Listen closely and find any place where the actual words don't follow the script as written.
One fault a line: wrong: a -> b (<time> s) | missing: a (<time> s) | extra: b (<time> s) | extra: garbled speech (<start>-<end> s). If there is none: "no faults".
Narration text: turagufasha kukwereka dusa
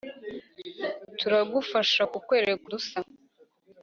no faults